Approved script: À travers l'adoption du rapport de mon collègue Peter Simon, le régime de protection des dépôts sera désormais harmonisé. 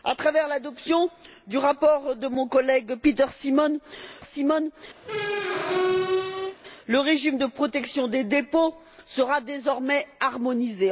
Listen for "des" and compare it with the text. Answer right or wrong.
right